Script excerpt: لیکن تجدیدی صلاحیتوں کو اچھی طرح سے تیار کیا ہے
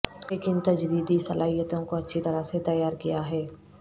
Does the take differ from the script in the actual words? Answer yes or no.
no